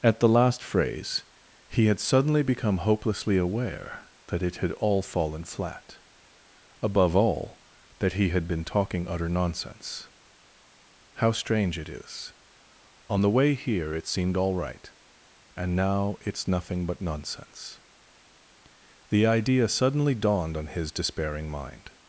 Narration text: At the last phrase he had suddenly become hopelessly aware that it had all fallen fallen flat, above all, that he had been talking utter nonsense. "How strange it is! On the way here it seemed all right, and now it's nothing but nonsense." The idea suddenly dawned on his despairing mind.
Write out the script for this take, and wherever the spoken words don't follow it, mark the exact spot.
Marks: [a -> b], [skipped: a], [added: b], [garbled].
At the last phrase he had suddenly become hopelessly aware that it had all fallen [skipped: fallen] flat, above all, that he had been talking utter nonsense. "How strange it is! On the way here it seemed all right, and now it's nothing but nonsense." The idea suddenly dawned on his despairing mind.